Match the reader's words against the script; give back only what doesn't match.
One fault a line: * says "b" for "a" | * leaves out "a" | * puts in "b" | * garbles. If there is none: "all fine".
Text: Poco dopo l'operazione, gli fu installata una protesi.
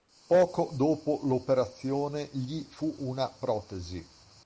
* leaves out "installata"